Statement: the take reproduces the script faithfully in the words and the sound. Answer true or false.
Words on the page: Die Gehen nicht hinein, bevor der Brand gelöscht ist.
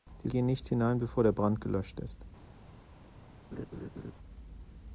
false